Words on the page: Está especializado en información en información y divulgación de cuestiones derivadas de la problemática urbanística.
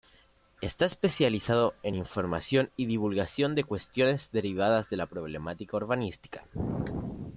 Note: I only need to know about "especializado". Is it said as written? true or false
true